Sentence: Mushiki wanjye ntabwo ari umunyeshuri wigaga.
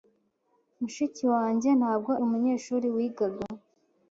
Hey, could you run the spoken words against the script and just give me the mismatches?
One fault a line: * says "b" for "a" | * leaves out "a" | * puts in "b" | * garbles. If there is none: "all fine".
* leaves out "ari"